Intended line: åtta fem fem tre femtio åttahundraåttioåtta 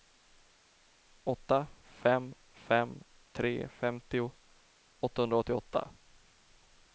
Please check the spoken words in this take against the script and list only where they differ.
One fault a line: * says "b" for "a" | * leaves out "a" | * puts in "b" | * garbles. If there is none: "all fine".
all fine